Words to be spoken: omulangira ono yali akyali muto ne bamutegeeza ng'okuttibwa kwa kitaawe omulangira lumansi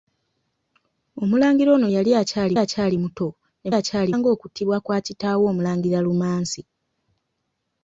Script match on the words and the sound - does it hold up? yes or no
no